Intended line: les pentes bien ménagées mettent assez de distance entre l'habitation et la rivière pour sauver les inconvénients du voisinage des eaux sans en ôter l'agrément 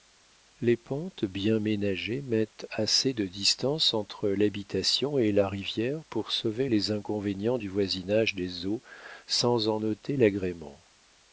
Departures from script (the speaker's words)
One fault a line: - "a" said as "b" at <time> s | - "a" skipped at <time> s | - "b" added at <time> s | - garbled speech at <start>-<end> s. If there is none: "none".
none